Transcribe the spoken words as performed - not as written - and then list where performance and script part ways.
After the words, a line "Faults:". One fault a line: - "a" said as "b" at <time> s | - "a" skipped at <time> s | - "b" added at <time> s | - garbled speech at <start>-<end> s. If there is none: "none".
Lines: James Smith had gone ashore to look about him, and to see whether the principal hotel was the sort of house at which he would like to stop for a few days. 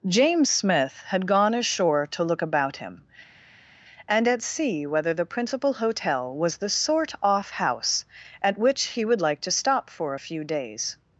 James Smith had gone ashore to look about him, and at see whether the principal hotel was the sort off house at which he would like to stop for a few days.
Faults:
- "to" said as "at" at 4.3 s
- "of" said as "off" at 7.2 s